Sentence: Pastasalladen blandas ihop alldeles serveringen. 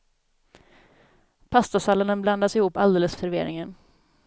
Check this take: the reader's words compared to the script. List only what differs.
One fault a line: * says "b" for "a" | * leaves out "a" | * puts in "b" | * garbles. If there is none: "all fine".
all fine